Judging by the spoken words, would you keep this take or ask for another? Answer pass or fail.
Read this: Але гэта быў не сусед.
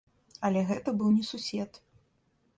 pass